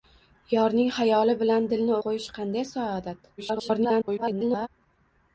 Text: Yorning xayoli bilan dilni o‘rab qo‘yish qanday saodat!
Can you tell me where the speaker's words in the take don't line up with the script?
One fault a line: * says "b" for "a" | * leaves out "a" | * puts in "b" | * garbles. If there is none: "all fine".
* leaves out "o‘rab"
* garbles